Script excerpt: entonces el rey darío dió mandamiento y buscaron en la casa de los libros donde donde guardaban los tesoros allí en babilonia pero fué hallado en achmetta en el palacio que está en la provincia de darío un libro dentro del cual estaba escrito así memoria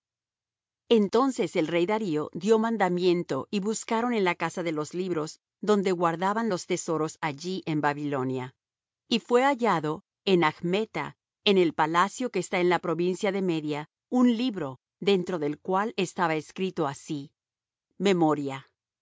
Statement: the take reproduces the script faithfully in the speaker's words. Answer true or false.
false